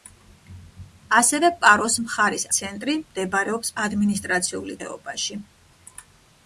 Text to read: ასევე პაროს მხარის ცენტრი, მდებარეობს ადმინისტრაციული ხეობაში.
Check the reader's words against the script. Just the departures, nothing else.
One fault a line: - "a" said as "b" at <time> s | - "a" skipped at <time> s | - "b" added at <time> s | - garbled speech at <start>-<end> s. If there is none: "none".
none